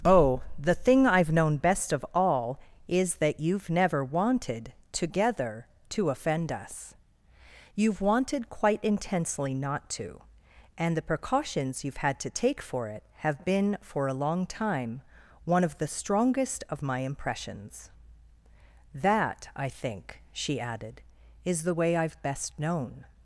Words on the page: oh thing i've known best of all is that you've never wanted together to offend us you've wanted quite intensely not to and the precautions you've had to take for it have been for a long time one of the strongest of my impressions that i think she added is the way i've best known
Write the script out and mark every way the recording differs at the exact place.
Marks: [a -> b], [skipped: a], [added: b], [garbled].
oh [added: the] thing i've known best of all is that you've never wanted together to offend us you've wanted quite intensely not to and the precautions you've had to take for it have been for a long time one of the strongest of my impressions that i think she added is the way i've best known